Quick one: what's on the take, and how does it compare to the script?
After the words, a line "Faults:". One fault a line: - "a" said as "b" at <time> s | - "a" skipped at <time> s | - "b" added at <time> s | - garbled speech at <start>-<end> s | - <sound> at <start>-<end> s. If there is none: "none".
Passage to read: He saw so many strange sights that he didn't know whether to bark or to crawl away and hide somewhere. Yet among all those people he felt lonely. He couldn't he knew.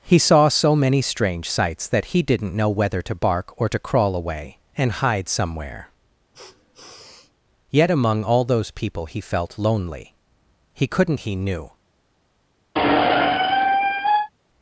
He saw so many strange sights that he didn't know whether to bark or to crawl away and hide somewhere. Yet among all those people he felt lonely. He couldn't he knew.
Faults:
- sniff at 6.3-7.3 s
- squeak at 12.7-14.3 s